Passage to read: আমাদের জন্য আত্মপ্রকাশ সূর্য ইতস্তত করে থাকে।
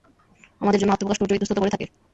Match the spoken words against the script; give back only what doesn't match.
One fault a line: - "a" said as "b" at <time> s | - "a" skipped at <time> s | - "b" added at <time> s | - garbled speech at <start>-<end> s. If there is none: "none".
none